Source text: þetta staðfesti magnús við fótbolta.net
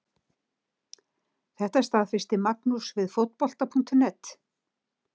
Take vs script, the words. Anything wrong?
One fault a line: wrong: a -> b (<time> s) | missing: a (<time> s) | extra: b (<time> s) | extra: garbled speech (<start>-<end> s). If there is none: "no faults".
no faults